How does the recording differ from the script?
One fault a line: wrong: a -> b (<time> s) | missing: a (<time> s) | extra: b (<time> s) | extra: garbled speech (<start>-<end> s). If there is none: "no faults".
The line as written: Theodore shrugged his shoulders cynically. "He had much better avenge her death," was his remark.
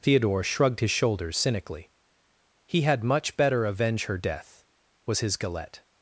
wrong: remark -> galette (5.4 s)